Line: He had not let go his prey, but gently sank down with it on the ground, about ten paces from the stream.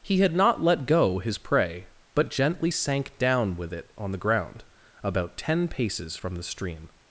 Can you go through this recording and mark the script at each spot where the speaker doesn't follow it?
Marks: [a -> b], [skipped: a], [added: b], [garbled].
He had not let go his prey, but gently sank down with it on the ground, about ten paces from the stream.